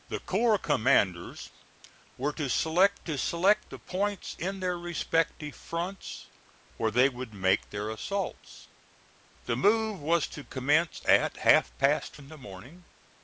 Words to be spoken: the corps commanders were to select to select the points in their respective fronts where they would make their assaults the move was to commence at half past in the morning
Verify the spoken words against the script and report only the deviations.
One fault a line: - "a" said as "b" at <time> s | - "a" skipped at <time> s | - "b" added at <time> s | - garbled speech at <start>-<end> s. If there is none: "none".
none